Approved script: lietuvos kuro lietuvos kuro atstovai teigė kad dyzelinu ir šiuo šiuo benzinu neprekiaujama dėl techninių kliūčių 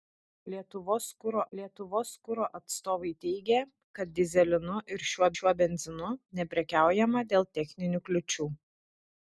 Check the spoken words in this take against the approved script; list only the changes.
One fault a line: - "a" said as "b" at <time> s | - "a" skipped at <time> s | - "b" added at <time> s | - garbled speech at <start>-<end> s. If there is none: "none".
none